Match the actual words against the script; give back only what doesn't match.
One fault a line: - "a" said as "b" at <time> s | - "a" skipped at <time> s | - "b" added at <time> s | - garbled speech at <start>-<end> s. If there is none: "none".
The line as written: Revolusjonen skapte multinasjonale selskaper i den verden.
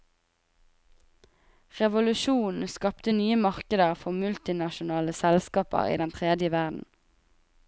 - "nye markeder for" added at 3.1 s
- "tredje" added at 6.2 s